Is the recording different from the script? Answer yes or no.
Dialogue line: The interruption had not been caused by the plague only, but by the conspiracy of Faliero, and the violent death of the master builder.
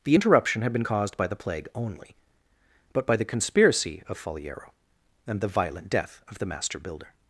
yes